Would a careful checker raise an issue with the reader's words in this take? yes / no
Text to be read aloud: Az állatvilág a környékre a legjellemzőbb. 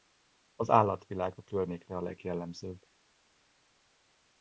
no